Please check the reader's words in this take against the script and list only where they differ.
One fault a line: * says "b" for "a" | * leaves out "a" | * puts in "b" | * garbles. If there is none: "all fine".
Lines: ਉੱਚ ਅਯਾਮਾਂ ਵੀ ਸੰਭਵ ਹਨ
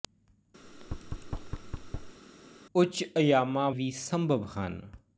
all fine